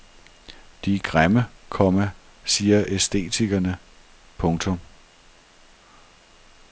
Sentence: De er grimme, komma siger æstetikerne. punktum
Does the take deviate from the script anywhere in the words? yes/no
no